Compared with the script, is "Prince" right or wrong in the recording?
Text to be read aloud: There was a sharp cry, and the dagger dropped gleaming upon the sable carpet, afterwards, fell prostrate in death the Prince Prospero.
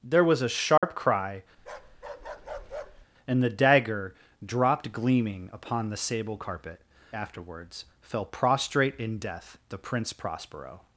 right